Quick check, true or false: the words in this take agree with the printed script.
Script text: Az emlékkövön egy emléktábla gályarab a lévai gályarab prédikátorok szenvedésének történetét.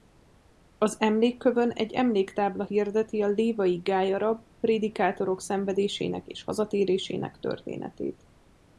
false